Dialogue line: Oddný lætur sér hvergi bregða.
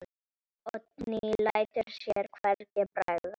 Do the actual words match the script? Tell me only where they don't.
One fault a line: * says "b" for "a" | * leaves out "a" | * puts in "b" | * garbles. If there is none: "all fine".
all fine